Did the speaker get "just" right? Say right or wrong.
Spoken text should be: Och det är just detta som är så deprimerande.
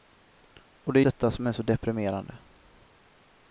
wrong